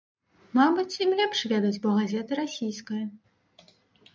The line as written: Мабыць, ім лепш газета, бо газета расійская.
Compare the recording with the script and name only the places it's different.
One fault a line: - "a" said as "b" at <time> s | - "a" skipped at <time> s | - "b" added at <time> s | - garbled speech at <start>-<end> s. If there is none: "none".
- "газета" said as "ведаць" at 1.5 s